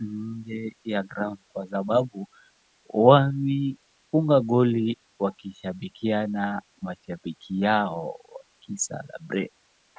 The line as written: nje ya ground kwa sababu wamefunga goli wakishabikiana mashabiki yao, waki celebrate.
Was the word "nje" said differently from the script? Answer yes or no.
no